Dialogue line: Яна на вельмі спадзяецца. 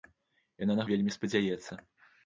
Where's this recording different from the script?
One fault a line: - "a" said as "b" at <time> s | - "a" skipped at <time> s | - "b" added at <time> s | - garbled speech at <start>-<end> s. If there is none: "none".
none